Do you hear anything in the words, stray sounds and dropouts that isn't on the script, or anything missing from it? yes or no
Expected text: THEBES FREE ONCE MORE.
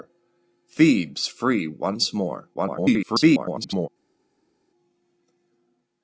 yes